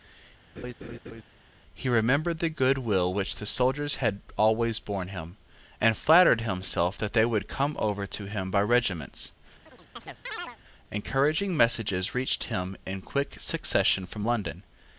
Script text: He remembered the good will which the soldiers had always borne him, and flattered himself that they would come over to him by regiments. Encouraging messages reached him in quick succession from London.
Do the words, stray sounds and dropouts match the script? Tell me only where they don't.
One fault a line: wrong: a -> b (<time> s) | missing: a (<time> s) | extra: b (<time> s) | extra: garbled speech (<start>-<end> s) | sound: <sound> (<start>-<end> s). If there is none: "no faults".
sound: laugh (0.6-1.2 s)
sound: chirp (9.6-10.6 s)